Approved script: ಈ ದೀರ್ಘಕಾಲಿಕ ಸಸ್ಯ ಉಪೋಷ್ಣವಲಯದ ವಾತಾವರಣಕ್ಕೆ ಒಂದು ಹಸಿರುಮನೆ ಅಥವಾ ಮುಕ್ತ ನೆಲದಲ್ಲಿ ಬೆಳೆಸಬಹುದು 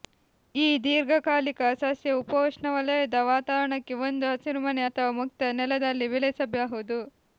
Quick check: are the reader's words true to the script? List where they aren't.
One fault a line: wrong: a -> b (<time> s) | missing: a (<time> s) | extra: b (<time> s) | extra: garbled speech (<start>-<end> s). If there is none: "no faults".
no faults